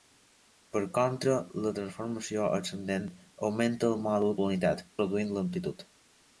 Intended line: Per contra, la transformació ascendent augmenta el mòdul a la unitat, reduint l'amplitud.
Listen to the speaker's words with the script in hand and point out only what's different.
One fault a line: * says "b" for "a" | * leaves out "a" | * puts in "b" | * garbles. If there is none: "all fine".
all fine